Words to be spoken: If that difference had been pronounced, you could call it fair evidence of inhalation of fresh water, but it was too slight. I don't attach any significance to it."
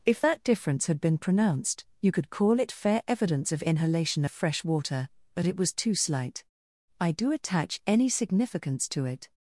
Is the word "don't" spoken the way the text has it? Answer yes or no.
no